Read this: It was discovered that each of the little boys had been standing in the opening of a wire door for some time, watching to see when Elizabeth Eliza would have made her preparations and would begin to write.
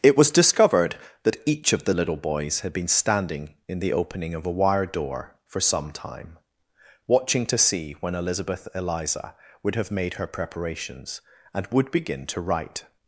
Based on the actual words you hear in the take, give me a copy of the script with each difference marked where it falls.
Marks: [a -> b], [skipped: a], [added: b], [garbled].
It was discovered that each of the little boys had been standing in the opening of a wire door for some time, watching to see when Elizabeth Eliza would have made her preparations and would begin to write.